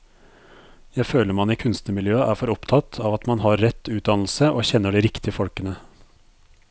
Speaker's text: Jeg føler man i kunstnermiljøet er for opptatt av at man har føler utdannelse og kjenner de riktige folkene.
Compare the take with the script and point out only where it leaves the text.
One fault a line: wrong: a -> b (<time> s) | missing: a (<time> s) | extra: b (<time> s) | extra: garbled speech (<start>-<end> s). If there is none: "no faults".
wrong: føler -> rett (3.6 s)